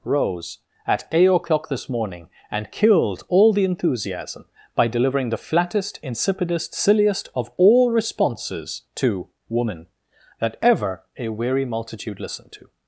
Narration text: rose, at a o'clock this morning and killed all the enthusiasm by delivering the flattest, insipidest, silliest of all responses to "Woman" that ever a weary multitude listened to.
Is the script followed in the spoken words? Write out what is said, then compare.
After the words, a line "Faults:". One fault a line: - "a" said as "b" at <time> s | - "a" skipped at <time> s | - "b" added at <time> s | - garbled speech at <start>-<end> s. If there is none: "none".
rose, at eight o'clock this morning and killed all the enthusiasm by delivering the flattest, insipidest, silliest of all responses to "Woman" that ever a weary multitude listened to.
Faults:
- "a" said as "eight" at 1.1 s